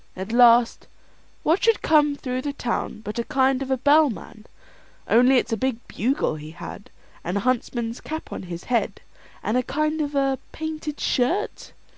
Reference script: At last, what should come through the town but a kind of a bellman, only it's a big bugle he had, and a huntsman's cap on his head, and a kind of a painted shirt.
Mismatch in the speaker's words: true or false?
false